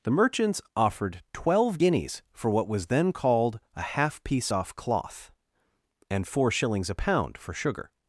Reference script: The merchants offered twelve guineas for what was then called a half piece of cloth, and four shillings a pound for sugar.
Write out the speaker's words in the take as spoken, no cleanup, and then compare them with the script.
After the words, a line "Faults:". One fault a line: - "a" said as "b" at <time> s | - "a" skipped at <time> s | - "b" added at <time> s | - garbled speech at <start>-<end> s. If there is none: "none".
The merchants offered twelve guineas for what was then called a half piece off cloth, and four shillings a pound for sugar.
Faults:
- "of" said as "off" at 4.5 s